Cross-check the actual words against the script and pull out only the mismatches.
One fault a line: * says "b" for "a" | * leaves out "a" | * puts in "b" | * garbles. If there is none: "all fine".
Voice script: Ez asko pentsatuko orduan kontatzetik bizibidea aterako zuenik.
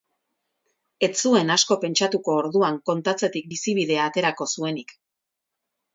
* puts in "zuen"